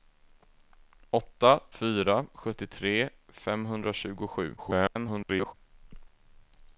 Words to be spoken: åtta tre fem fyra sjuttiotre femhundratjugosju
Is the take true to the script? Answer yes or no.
no